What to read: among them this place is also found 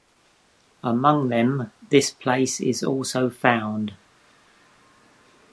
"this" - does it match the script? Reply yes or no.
yes